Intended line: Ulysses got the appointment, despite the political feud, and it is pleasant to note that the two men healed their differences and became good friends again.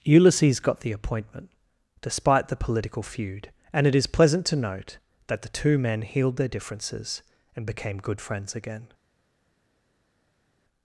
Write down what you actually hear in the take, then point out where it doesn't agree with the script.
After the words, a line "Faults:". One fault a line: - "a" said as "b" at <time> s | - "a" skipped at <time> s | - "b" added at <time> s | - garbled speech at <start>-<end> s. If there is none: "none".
Ulysses got the appointment, despite the political feud, and it is pleasant to note that the two men healed their differences and became good friends again.
Faults:
none